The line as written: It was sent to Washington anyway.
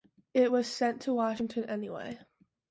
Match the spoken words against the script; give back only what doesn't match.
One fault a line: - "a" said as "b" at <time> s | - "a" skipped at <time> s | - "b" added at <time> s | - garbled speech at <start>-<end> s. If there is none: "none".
none